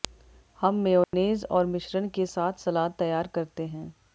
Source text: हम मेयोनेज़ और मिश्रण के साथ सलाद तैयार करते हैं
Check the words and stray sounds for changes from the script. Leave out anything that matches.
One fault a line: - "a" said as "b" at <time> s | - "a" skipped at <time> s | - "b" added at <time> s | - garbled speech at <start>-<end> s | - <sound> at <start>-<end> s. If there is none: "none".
- dropout at 1.0-1.1 s